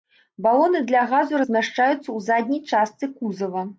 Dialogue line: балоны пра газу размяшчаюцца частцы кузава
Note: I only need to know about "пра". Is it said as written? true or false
false